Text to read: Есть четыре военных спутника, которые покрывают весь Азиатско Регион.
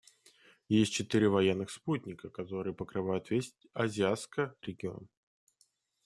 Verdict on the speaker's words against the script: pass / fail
pass